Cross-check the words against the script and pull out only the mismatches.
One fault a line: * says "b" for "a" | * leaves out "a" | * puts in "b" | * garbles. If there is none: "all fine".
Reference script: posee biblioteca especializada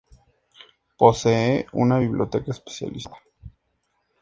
* puts in "una"